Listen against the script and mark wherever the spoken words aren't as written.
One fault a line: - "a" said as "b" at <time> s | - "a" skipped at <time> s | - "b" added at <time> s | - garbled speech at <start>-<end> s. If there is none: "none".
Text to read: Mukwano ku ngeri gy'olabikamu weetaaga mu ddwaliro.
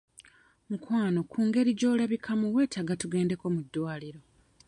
- "tugendeko" added at 3.0 s